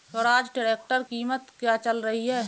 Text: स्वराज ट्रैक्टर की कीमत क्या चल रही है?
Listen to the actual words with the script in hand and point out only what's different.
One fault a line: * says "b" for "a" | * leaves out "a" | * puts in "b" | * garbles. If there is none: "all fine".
* leaves out "की"